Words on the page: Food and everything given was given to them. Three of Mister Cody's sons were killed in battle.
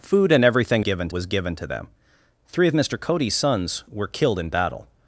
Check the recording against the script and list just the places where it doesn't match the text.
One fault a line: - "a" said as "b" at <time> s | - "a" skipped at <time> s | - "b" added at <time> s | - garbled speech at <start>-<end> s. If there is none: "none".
none